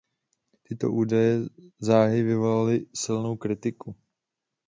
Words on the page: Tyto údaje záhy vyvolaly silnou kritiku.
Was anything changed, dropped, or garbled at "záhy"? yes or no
no